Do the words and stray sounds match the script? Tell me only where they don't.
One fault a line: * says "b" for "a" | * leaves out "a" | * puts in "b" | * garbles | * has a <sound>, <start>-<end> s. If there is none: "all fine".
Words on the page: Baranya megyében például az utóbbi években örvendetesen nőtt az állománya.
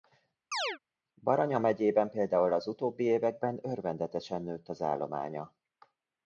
* has a chirp, 0.5-0.8 s